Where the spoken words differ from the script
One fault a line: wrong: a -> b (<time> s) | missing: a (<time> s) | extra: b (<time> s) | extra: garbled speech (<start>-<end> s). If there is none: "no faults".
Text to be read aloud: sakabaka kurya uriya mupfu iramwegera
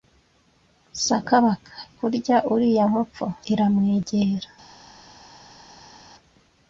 no faults